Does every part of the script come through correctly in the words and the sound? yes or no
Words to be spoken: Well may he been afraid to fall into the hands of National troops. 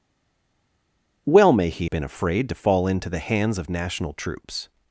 yes